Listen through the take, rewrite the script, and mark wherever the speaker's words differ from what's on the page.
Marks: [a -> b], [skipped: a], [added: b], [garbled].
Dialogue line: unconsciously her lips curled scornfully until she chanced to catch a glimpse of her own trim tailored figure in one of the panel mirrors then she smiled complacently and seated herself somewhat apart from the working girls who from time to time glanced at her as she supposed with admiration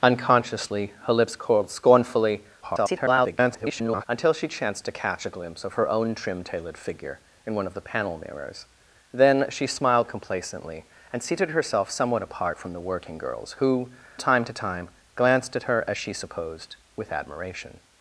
unconsciously her lips curled scornfully [garbled] until she chanced to catch a glimpse of her own trim tailored figure in one of the panel mirrors then she smiled complacently and seated herself somewhat apart from the working girls who [skipped: from] time to time glanced at her as she supposed with admiration